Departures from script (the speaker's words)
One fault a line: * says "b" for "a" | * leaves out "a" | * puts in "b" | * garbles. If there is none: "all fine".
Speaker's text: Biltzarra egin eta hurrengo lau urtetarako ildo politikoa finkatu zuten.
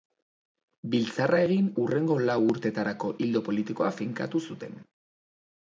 * leaves out "eta"